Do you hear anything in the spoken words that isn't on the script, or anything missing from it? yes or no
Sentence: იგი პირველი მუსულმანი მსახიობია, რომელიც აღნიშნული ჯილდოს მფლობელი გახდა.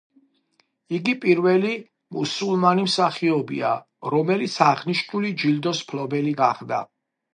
no